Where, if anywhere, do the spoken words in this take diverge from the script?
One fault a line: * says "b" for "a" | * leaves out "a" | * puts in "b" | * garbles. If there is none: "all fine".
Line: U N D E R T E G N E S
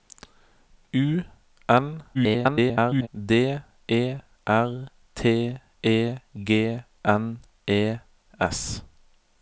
* garbles